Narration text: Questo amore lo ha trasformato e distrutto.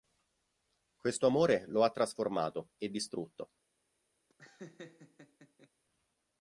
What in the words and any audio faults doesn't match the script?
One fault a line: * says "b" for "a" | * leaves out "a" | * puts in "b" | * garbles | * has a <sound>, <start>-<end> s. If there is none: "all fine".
* has a laugh, 4.3-5.7 s